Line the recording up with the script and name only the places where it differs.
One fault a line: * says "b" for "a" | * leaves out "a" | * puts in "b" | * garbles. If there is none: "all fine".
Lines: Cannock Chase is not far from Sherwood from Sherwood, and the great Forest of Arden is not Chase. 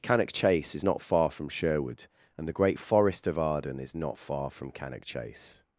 * leaves out "from Sherwood"
* puts in "far from Cannock"